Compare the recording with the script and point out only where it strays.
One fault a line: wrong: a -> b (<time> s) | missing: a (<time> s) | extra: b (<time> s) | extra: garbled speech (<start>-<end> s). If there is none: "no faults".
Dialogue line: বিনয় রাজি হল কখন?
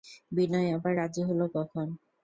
extra: আবার (0.8 s)